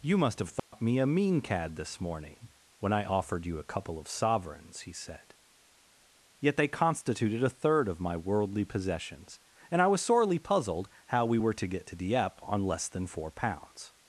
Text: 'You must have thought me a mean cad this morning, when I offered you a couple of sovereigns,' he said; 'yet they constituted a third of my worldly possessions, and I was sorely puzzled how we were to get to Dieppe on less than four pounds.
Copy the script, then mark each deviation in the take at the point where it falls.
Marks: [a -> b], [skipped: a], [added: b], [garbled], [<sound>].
'You must have thought [dropout] me a mean cad this morning, when I offered you a couple of sovereigns,' he said; 'yet they constituted a third of my worldly possessions, and I was sorely puzzled how we were to get to Dieppe on less than four pounds.